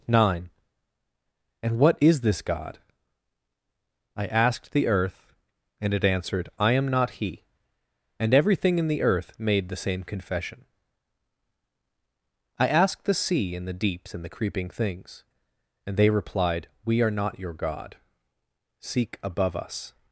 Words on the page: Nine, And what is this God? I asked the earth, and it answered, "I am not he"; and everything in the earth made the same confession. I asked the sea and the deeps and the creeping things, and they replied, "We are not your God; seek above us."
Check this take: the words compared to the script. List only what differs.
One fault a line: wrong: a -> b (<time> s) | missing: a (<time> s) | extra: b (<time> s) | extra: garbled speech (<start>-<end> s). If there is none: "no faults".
no faults